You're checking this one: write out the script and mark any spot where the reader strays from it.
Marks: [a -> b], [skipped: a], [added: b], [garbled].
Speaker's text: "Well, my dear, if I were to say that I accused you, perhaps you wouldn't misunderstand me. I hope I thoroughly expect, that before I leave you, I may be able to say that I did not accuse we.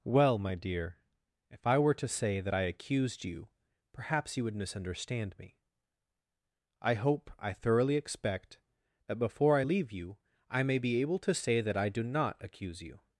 "Well, my dear, if I were to say that I accused you, perhaps you [wouldn't -> would] misunderstand me. I hope I thoroughly expect, that before I leave you, I may be able to say that I [did -> do] not accuse [we. -> you]